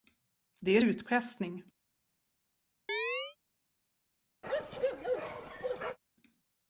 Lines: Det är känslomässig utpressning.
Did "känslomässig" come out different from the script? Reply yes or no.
yes